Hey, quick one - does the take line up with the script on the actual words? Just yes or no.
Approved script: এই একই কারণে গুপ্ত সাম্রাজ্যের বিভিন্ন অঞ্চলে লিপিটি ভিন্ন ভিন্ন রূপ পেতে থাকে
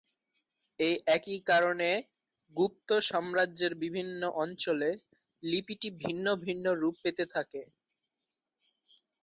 yes